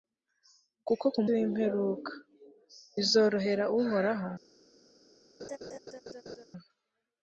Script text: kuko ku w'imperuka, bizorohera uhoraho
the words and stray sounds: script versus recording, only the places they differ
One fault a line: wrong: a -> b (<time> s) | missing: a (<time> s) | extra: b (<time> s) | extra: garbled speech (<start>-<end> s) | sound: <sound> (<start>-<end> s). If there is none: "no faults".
sound: laugh (5.4-6.5 s)